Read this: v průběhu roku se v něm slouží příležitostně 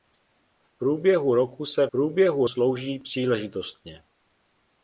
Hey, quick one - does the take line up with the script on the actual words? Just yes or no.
no